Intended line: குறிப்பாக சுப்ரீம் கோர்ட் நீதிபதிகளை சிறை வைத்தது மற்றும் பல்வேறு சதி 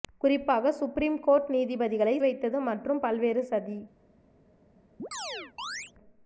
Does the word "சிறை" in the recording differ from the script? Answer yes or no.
yes